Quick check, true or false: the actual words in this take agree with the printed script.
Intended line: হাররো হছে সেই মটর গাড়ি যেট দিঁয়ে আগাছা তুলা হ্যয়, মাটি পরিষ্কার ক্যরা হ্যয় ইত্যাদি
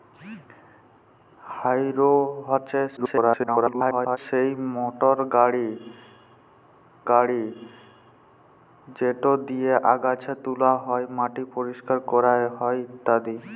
false